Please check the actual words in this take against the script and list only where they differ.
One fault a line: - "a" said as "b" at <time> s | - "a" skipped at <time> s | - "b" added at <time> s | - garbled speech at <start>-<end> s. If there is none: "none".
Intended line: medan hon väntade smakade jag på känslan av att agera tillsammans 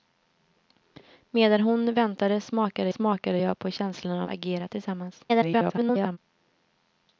- "smakade" added at 2.9 s
- "att" skipped at 4.3 s
- garbled speech at 5.3-6.2 s